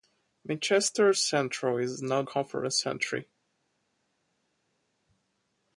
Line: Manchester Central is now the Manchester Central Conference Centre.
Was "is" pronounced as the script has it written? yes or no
yes